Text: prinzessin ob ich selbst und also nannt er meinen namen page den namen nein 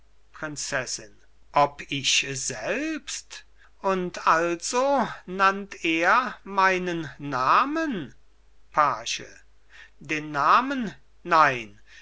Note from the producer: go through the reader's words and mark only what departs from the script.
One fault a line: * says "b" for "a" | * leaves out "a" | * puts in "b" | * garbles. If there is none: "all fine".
all fine